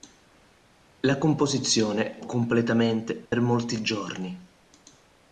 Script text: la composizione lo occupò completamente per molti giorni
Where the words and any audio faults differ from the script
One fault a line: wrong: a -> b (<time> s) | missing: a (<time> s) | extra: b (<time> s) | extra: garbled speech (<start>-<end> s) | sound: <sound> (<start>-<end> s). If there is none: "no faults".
missing: lo occupò (2.2 s)
sound: dropout (3.3-3.3 s)